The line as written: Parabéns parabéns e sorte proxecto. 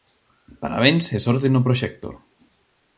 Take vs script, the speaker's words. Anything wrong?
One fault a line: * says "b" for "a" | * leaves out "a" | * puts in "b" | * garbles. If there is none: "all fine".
* leaves out "parabéns"
* puts in "no"